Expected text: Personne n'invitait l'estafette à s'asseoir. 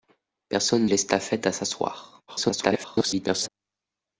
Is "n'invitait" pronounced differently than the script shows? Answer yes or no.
yes